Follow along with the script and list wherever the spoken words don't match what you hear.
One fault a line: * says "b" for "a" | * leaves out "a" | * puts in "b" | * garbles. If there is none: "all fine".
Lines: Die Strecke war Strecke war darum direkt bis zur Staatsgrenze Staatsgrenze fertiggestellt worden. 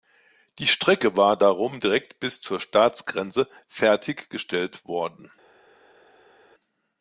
* leaves out "Strecke war"
* leaves out "Staatsgrenze"